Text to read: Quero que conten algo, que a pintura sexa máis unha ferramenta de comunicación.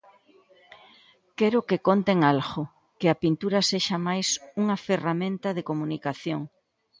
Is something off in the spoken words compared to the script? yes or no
no